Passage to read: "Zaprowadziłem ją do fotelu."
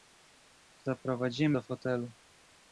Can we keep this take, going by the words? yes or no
no